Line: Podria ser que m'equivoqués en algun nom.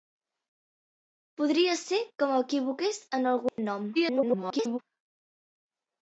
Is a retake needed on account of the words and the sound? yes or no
yes